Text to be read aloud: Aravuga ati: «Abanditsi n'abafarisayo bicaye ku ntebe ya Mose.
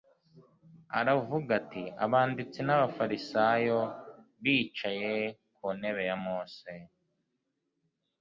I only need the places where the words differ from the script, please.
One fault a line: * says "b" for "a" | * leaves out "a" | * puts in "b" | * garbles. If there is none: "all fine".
all fine